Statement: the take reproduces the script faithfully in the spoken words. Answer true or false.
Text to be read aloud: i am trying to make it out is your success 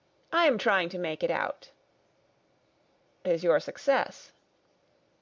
true